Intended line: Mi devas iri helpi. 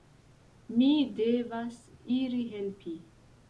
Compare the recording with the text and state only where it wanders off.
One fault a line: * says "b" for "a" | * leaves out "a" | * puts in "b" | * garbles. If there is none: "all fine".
all fine